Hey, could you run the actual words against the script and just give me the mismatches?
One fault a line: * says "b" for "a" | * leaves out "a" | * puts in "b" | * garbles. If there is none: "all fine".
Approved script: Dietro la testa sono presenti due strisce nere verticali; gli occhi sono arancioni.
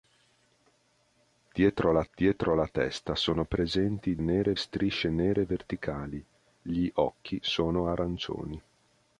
* puts in "dietro la"
* says "nere" for "due"